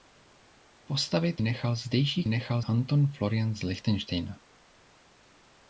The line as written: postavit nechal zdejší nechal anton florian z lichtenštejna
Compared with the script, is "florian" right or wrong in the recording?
right